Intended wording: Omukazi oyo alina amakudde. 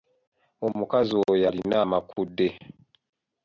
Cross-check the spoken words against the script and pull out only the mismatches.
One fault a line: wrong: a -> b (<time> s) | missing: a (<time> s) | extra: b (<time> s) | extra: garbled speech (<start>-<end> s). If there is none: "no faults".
no faults